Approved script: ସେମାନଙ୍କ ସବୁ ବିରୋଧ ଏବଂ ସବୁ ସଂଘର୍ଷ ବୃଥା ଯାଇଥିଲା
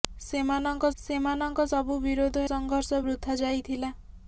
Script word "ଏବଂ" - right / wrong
wrong